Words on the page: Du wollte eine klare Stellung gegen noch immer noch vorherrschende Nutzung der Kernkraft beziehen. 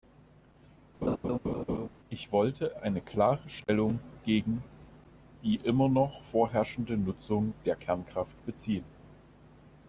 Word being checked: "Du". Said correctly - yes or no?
no